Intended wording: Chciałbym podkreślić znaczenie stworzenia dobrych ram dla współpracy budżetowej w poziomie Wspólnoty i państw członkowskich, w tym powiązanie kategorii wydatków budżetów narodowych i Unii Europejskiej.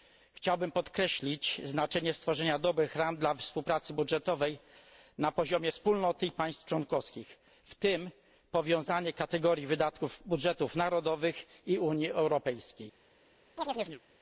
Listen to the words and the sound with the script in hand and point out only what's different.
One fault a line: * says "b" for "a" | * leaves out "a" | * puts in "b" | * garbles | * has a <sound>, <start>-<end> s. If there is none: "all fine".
* says "na" for "w"
* has a chirp, 13.6-14.0 s